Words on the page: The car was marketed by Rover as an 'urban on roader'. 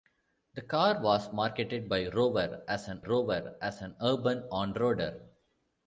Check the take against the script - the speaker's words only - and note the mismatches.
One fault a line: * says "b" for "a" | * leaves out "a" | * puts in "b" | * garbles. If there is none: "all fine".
* puts in "Rover as an"